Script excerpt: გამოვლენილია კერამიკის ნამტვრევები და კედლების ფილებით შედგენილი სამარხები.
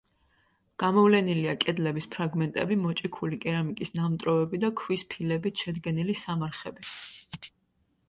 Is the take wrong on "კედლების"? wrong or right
wrong